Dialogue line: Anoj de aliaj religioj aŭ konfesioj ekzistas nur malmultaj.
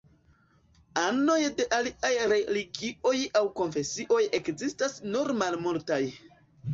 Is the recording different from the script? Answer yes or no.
no